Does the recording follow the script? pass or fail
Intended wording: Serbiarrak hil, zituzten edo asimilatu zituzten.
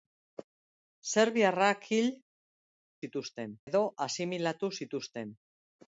pass